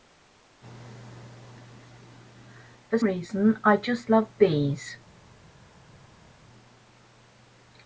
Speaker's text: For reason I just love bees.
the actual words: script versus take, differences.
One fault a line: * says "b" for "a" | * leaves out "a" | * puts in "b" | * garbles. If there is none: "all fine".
all fine